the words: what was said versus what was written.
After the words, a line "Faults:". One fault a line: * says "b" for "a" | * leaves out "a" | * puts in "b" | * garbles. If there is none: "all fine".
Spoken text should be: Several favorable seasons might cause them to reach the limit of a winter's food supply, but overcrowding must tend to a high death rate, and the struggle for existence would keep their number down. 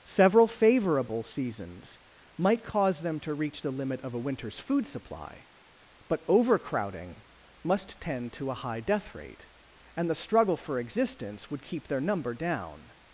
Several favorable seasons might cause them to reach the limit of a winter's food supply, but overcrowding must tend to a high death rate, and the struggle for existence would keep their number down.
Faults:
all fine